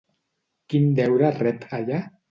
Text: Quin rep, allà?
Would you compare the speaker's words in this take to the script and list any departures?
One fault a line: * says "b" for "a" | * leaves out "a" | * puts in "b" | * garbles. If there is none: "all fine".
* puts in "deure"